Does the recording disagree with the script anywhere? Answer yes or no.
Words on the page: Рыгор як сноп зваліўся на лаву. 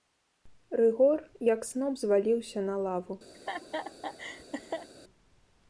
no